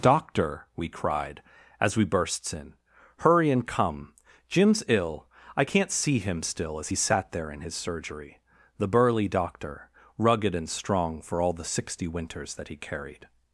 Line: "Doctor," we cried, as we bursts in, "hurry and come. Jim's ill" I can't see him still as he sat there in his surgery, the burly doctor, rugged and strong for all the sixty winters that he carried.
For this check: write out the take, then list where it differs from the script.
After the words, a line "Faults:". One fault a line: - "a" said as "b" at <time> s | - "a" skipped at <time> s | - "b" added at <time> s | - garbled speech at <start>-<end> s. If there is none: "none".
"Doctor," we cried, as we bursts in, "hurry and come. Jim's ill" I can't see him still as he sat there in his surgery, the burly doctor, rugged and strong for all the sixty winters that he carried.
Faults:
none